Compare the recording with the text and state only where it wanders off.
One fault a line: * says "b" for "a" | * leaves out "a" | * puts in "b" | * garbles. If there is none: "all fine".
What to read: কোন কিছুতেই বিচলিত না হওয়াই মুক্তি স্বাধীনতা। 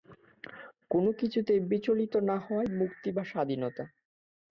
* puts in "বা"